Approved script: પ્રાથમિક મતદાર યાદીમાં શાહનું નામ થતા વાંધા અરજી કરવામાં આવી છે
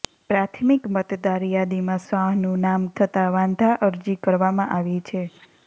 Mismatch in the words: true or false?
false